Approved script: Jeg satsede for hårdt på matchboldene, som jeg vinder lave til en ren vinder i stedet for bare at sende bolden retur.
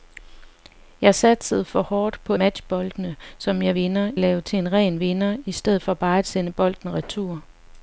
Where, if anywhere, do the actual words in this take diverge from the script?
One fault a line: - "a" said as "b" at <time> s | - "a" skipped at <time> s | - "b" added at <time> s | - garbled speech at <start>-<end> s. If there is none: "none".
none